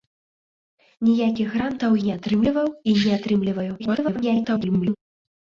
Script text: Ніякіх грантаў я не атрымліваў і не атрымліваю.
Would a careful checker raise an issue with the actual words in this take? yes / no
yes